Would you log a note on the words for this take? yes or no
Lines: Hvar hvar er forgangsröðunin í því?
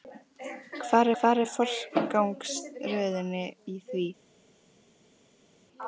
no